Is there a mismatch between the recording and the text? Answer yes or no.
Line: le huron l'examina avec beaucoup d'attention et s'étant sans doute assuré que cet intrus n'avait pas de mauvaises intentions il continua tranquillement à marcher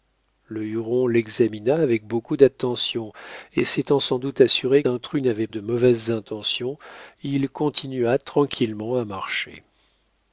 yes